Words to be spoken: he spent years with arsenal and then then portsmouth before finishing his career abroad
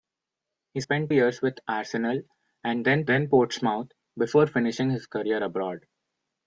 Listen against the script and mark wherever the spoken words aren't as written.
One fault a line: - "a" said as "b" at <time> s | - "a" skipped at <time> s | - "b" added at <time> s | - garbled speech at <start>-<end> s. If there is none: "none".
none